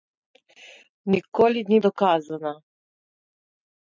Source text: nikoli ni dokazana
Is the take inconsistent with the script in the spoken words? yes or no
no